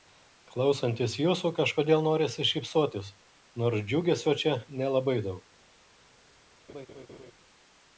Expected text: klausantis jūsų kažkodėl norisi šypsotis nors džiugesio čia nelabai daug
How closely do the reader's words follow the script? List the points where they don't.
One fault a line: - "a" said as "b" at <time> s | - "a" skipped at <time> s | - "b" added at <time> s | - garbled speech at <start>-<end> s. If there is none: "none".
none